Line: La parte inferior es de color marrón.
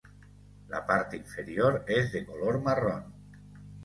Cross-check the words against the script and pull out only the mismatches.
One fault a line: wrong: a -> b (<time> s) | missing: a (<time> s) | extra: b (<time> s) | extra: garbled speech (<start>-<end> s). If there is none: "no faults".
no faults